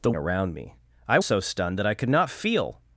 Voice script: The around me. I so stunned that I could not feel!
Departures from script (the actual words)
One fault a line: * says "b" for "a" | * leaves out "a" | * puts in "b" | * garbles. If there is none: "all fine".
all fine